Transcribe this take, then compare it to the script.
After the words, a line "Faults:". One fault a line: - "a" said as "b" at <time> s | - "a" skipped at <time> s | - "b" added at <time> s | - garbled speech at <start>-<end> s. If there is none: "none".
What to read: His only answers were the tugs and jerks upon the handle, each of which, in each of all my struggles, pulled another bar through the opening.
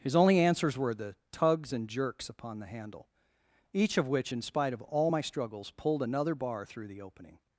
His only answers were the tugs and jerks upon the handle, each of which, in spite of all my struggles, pulled another bar through the opening.
Faults:
- "each" said as "spite" at 4.4 s